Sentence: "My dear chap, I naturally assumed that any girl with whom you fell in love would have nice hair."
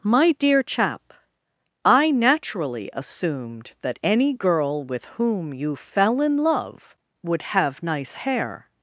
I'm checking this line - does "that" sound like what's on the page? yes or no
yes